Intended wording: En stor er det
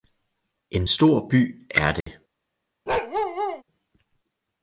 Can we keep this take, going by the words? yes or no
no